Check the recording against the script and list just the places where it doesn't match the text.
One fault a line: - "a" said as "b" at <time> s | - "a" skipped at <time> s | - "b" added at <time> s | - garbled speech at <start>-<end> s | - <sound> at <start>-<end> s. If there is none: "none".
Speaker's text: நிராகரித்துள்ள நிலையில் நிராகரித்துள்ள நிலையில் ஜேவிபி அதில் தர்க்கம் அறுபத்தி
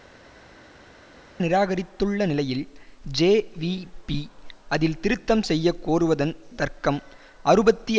- "நிராகரித்துள்ள நிலையில் ஜேவிபி அதில்" said as "ஜேவிபி அதில் திருத்தம் செய்ய கோருவதன்" at 3.2 s